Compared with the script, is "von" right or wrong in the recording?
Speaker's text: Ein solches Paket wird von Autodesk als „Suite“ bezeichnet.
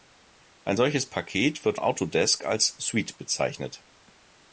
wrong